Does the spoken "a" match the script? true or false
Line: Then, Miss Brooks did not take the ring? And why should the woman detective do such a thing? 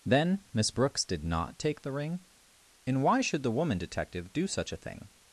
true